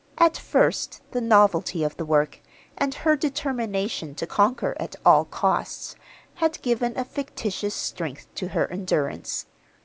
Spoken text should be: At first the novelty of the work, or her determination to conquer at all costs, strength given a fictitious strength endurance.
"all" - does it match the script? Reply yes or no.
yes